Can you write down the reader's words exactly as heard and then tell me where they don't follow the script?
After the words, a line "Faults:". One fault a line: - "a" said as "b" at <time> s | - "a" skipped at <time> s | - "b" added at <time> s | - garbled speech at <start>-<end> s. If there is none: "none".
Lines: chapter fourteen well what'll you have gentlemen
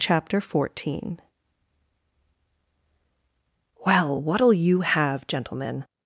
chapter fourteen well what'll you have gentlemen
Faults:
none